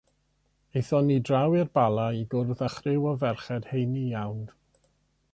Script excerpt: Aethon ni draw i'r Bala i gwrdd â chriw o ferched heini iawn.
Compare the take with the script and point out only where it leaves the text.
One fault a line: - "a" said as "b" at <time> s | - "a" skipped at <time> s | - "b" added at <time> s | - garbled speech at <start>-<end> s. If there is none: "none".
none